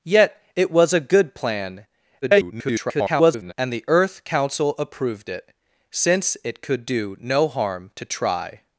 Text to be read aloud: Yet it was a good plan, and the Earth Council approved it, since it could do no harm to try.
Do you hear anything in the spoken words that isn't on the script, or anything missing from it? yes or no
yes